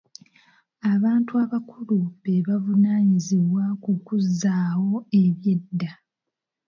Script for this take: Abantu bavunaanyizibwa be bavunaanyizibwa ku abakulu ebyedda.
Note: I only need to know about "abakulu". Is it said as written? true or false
false